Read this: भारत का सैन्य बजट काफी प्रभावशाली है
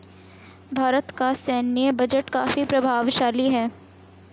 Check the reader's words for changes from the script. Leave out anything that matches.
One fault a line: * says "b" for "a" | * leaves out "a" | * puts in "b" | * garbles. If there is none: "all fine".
all fine